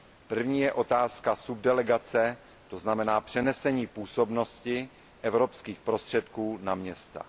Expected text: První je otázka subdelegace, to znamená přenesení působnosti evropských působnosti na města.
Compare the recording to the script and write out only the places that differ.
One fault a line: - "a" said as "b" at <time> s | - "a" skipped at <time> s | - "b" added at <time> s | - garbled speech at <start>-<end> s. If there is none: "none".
- "působnosti" said as "prostředků" at 5.8 s